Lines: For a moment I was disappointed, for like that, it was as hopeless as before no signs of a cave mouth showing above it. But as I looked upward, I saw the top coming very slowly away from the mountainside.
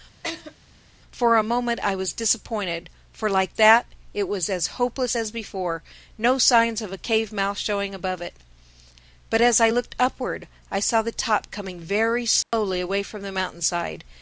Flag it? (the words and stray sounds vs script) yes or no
yes